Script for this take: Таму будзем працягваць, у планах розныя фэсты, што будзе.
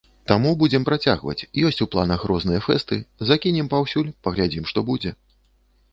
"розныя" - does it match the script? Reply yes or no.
yes